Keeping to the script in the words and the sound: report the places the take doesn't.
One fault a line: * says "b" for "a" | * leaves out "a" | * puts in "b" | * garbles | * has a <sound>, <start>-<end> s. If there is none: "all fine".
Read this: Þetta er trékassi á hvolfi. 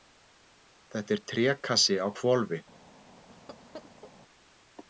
* has a laugh, 3.3-4.1 s